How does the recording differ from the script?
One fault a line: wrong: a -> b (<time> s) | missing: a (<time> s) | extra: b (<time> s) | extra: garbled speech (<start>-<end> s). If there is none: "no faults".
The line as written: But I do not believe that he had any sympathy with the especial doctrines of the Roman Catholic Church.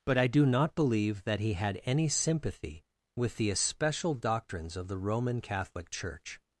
no faults